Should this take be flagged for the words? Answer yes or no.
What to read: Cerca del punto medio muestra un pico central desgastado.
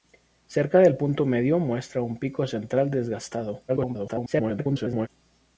yes